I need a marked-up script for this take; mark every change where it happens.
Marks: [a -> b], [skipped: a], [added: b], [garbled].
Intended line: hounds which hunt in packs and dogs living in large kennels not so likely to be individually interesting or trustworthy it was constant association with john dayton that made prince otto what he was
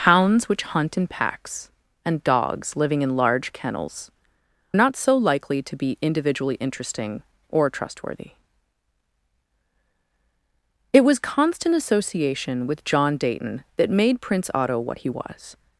hounds which hunt in packs and dogs living in large kennels not so likely to be individually interesting or trustworthy it was constant association with john dayton that made prince otto what he was